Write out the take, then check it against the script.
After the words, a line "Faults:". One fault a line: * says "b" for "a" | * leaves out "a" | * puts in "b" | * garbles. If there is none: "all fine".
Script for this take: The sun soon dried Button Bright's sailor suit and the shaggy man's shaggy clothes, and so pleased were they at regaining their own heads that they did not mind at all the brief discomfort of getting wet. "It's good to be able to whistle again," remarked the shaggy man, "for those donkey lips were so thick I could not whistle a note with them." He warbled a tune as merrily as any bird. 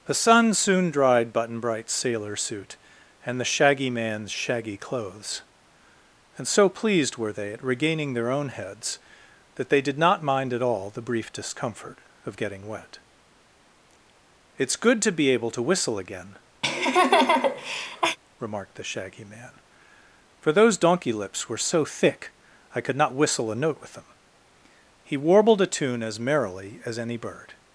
The sun soon dried Button Bright's sailor suit and the shaggy man's shaggy clothes, and so pleased were they at regaining their own heads that they did not mind at all the brief discomfort of getting wet. "It's good to be able to whistle again," remarked the shaggy man, "for those donkey lips were so thick I could not whistle a note with them." He warbled a tune as merrily as any bird.
Faults:
all fine